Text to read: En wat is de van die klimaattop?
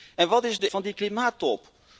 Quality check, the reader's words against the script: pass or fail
pass